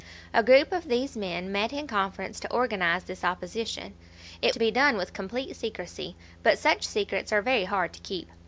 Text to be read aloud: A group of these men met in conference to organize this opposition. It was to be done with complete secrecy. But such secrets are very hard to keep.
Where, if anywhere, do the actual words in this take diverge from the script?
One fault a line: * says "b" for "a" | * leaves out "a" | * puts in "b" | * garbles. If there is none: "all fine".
* leaves out "was"